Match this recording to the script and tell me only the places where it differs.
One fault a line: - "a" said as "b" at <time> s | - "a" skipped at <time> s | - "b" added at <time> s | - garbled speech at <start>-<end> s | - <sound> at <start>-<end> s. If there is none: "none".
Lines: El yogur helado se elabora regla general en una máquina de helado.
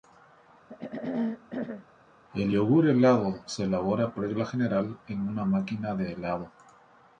- throat clearing at 0.7-1.9 s